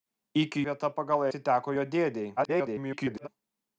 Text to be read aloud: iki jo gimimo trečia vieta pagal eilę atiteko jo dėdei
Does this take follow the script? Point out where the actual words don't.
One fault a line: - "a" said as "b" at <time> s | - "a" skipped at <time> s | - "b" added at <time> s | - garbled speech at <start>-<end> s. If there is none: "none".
- "jo gimimo trečia" skipped at 0.6 s
- "eilę" skipped at 1.3 s
- garbled speech at 2.4-3.3 s